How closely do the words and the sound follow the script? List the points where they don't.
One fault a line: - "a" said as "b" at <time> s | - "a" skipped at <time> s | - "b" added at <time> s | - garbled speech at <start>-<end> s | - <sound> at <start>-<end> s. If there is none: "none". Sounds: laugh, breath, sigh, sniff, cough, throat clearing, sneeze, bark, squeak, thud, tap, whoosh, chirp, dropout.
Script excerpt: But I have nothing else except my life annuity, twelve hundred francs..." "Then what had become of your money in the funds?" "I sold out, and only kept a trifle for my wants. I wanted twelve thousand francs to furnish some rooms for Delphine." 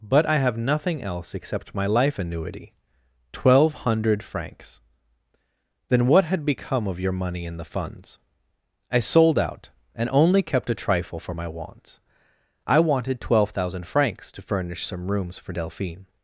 none